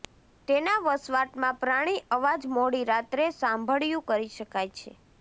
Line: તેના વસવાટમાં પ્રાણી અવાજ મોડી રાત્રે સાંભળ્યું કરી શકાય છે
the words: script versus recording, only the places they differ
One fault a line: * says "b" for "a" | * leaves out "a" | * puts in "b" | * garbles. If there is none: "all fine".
all fine